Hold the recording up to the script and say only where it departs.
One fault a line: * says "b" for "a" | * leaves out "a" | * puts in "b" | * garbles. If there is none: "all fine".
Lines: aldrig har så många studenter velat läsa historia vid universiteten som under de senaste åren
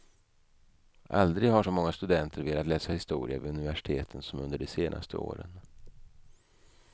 all fine